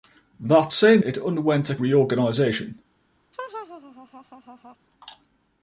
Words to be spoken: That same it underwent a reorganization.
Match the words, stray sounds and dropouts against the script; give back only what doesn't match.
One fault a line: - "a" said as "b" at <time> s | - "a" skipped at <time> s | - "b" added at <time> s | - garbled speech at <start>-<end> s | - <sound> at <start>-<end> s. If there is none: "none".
- laugh at 3.3-4.8 s